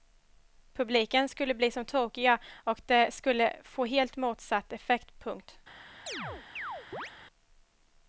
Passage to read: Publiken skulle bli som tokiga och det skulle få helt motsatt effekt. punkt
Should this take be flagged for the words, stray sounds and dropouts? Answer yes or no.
yes